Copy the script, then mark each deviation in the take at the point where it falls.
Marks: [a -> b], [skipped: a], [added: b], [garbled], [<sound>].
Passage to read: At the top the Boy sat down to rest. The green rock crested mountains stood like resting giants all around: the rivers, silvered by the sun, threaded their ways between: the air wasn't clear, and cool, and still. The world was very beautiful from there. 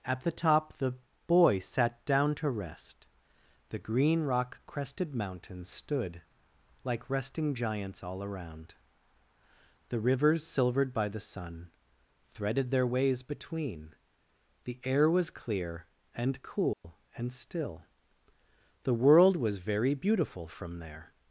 At the top the Boy sat down to rest. The green rock crested mountains stood like resting giants all around: the rivers, silvered by the sun, threaded their ways between: the air [wasn't -> was] clear, and cool, [dropout] and still. The world was very beautiful from there.